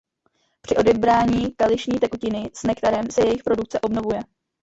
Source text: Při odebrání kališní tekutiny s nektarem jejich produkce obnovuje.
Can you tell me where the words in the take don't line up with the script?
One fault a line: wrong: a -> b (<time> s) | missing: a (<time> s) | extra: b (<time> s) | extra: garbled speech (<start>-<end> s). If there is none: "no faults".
extra: se (3.1 s)